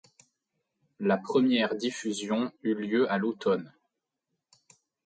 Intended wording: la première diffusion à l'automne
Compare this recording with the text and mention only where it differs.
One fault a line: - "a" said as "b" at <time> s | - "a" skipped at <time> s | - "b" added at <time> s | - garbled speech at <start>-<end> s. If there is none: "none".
- "eut lieu" added at 2.6 s